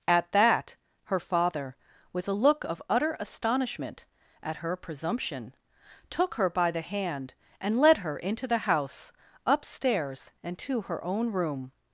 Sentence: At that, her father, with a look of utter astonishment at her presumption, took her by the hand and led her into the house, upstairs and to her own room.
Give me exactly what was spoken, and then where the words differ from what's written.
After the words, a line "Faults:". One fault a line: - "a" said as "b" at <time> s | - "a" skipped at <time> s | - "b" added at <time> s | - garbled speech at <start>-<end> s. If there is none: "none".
At that, her father, with a look of utter astonishment at her presumption, took her by the hand and led her into the house, upstairs and to her own room.
Faults:
none